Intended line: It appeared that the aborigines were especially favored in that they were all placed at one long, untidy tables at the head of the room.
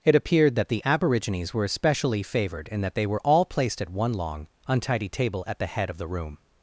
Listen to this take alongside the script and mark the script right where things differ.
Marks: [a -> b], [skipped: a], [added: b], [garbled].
It appeared that the aborigines were especially favored in that they were all placed at one long, untidy [tables -> table] at the head of the room.